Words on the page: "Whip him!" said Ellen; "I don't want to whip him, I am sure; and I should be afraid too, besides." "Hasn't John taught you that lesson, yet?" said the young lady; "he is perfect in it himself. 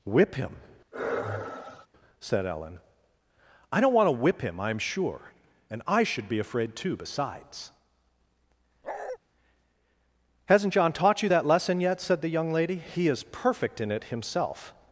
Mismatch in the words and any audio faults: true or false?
true